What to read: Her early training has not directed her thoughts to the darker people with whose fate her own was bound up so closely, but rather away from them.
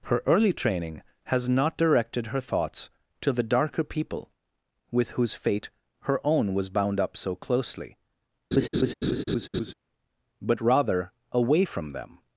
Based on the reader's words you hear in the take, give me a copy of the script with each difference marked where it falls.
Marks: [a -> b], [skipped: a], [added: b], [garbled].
Her early training has not directed her thoughts to the darker people with whose fate her own was bound up so closely, but rather away from them.